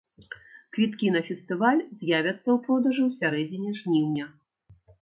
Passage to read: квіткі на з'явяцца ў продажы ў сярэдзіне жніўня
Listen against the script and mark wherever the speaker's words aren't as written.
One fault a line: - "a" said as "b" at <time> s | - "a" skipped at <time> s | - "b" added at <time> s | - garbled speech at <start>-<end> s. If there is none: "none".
- "фестываль" added at 1.3 s